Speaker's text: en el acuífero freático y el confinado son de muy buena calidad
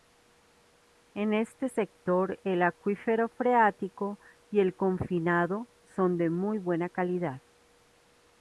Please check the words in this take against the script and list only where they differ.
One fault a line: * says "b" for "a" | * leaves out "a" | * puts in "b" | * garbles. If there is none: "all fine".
* puts in "este sector"